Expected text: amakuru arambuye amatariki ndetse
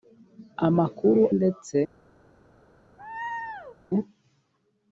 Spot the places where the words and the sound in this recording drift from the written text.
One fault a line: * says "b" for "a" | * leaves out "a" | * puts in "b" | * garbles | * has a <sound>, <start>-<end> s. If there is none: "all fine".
* leaves out "arambuye amatariki"
* has a laugh, 3.0-3.8 s